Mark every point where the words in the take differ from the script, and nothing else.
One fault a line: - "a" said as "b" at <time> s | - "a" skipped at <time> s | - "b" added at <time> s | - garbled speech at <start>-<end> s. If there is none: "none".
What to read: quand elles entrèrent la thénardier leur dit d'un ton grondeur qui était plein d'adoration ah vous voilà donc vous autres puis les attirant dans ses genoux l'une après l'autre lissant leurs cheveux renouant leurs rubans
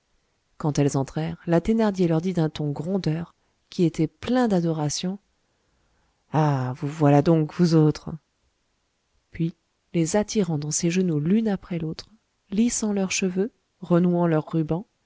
none